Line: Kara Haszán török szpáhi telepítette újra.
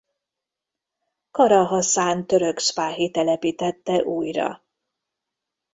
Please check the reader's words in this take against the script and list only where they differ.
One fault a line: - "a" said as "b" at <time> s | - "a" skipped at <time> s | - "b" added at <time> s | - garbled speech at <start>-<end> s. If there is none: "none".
none